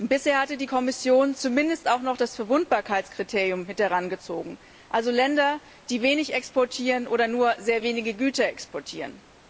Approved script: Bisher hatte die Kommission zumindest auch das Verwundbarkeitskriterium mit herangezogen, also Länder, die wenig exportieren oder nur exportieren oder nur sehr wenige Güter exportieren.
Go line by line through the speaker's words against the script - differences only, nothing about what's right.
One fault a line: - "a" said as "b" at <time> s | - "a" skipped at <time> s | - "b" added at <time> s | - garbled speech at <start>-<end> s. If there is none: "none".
- "noch" added at 2.0 s
- "exportieren oder nur" skipped at 7.6 s